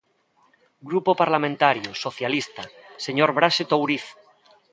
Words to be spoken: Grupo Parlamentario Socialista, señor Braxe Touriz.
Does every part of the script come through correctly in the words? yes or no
yes